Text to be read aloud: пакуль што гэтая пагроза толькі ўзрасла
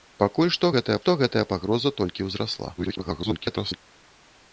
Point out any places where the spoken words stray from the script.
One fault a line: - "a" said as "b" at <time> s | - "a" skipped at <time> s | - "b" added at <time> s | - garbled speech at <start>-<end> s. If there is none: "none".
- "што гэтая" added at 1.0 s
- garbled speech at 2.8-3.8 s